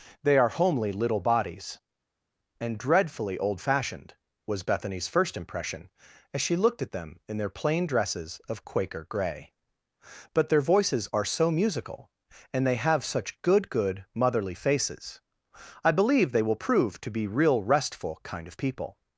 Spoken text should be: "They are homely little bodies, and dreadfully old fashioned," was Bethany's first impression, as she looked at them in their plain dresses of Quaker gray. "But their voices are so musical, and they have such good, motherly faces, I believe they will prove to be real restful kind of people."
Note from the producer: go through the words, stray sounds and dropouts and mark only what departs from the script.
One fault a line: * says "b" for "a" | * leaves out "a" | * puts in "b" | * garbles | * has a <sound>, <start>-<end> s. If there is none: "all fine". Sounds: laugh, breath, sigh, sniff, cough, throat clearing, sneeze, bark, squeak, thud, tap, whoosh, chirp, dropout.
* puts in "good"